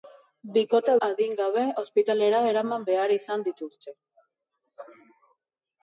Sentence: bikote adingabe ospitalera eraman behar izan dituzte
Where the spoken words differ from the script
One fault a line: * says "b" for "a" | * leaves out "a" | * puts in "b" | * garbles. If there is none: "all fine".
all fine